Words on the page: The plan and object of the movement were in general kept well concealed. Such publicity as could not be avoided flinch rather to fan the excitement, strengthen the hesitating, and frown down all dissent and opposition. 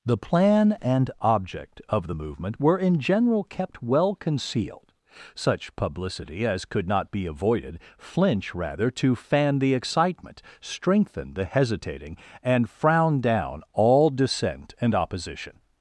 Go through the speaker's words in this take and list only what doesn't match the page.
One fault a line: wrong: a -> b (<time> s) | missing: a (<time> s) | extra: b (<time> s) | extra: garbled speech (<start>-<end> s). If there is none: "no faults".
no faults